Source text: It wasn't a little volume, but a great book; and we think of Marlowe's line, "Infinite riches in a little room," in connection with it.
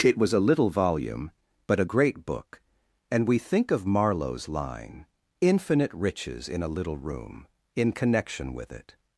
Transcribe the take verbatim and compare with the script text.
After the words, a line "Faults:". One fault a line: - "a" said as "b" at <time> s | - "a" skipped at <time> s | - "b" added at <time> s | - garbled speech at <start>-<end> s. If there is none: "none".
It was a little volume, but a great book; and we think of Marlowe's line, "Infinite riches in a little room," in connection with it.
Faults:
- "wasn't" said as "was" at 0.2 s